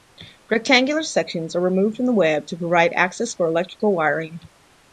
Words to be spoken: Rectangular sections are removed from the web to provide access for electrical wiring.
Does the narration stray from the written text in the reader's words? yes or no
no